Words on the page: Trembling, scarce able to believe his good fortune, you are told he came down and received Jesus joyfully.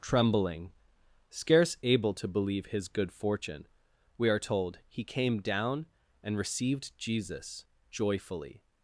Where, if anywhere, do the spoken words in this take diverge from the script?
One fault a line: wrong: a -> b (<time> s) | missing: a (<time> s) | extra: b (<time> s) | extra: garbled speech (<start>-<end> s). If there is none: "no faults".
wrong: you -> we (4.2 s)